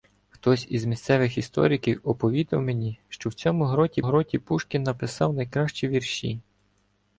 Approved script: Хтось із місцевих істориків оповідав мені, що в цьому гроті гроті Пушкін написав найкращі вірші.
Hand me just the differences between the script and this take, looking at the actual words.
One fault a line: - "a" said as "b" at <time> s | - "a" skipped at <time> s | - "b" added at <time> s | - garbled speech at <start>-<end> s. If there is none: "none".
none